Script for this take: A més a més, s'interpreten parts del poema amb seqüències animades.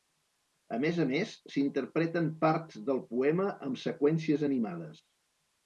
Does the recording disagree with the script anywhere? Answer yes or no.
no